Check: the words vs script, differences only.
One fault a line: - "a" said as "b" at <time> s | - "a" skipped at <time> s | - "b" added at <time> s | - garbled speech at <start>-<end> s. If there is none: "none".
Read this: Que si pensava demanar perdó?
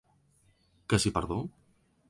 - "pensava demanar" skipped at 1.1 s